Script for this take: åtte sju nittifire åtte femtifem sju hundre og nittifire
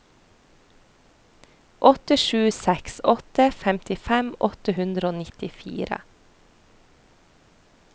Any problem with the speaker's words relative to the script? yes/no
yes